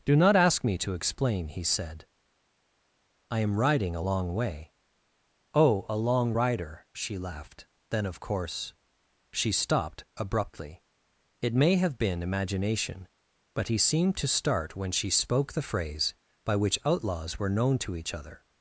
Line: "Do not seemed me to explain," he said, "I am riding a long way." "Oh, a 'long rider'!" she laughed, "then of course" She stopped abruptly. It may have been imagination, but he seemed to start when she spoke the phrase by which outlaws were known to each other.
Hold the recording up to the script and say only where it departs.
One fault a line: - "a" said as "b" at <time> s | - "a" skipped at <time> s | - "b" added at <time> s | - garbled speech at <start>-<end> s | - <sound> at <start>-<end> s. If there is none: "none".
- "seemed" said as "ask" at 0.3 s